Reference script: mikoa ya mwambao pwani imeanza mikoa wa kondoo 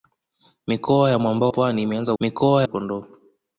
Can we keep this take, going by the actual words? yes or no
yes